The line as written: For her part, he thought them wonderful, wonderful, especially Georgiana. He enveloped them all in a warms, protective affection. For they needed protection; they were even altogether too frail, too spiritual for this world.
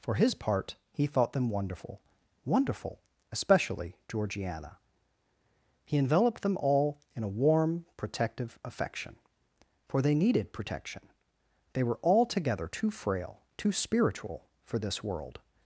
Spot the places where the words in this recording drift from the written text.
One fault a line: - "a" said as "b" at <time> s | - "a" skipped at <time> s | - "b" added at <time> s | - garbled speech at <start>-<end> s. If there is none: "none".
- "her" said as "his" at 0.1 s
- "warms" said as "warm" at 7.3 s
- "even" skipped at 12.0 s